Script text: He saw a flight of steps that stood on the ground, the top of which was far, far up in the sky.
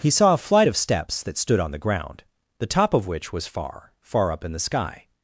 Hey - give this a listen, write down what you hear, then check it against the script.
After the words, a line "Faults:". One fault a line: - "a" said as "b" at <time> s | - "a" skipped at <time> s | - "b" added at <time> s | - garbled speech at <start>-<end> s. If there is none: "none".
He saw a flight of steps that stood on the ground, the top of which was far, far up in the sky.
Faults:
none